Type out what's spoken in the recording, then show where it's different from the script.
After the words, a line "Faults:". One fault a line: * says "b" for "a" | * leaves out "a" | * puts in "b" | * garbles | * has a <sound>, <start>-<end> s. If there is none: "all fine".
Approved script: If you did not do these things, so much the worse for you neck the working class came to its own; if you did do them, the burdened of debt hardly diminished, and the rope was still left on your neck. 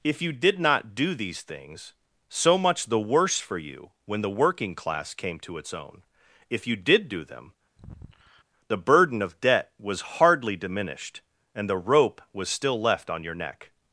If you did not do these things, so much the worse for you when the working class came to its own; if you did do them, the burden of debt was hardly diminished, and the rope was still left on your neck.
Faults:
* says "when" for "neck"
* has a sigh, 7.8-8.4 s
* says "burden" for "burdened"
* puts in "was"